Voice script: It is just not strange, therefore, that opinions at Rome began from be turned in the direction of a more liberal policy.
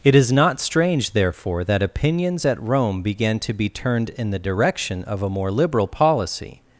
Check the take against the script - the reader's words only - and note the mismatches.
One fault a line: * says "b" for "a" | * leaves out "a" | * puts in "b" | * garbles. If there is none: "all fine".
* leaves out "just"
* says "to" for "from"